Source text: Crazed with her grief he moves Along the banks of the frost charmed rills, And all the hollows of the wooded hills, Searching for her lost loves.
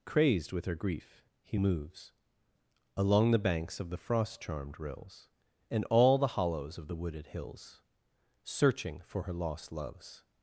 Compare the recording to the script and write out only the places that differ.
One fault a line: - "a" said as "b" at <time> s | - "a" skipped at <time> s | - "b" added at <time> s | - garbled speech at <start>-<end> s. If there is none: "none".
none